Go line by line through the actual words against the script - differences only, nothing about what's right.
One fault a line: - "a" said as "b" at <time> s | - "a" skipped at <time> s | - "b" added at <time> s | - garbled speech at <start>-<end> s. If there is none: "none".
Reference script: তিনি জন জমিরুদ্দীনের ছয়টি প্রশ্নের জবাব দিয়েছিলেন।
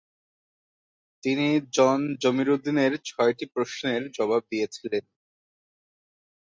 none